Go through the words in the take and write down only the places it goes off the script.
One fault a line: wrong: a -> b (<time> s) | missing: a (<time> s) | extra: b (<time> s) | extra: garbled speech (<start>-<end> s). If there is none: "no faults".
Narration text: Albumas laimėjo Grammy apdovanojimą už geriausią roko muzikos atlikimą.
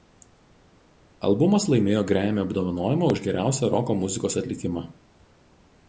no faults